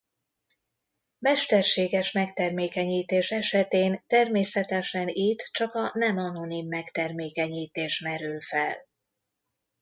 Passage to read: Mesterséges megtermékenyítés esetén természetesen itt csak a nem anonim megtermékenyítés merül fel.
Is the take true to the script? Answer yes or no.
yes